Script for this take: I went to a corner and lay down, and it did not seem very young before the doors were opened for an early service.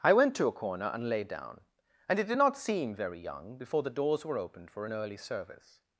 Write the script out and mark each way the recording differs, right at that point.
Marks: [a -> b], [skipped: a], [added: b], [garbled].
I went to a corner and lay down, and it did not seem very young before the doors were opened for an early service.